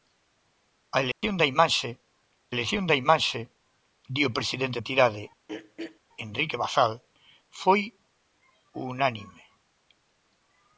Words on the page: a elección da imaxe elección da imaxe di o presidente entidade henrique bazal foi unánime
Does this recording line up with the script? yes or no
yes